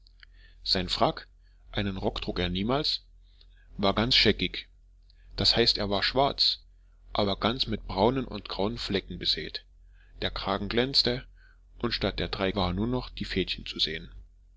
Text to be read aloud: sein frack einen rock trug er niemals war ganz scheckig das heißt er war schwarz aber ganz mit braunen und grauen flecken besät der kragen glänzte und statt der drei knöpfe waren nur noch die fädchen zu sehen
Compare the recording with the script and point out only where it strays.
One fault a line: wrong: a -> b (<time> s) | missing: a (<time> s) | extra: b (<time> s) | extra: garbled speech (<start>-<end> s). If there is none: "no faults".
missing: knöpfe (12.5 s)